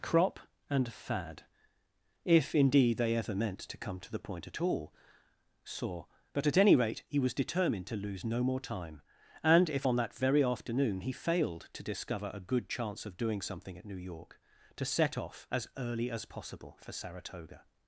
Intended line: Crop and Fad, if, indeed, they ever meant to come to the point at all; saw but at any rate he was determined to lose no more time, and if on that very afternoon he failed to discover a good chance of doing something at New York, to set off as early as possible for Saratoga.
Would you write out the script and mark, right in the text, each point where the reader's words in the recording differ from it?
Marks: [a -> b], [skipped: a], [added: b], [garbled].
Crop and Fad, if, indeed, they ever meant to come to the point at all; saw but at any rate he was determined to lose no more time, and if on that very afternoon he failed to discover a good chance of doing something at New York, to set off as early as possible for Saratoga.